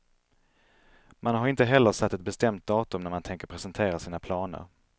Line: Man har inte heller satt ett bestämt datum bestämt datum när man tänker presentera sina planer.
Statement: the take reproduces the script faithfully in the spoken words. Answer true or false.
false